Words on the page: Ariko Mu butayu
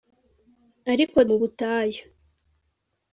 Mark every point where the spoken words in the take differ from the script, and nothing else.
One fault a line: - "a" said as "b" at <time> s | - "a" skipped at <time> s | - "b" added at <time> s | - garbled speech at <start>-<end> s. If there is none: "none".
none